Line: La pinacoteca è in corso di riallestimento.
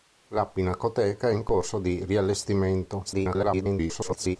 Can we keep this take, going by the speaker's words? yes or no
no